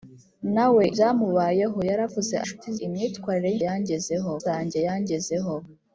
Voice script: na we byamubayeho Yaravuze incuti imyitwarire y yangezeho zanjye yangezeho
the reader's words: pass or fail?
pass